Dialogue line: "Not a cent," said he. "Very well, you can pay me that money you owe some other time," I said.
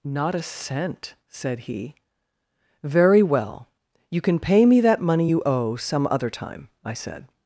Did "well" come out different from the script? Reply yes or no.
no